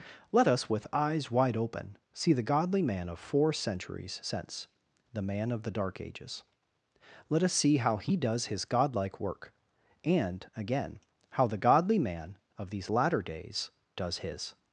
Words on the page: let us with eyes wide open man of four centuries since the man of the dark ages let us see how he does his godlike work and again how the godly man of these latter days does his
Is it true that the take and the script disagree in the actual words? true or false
true